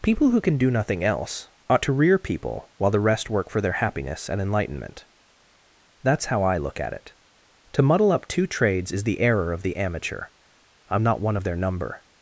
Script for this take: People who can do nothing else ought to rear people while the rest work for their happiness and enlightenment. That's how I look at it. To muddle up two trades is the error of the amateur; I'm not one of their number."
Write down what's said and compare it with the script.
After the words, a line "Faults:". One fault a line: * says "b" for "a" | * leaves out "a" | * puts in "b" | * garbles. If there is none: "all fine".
People who can do nothing else ought to rear people while the rest work for their happiness and enlightenment. That's how I look at it. To muddle up two trades is the error of the amateur; I'm not one of their number."
Faults:
all fine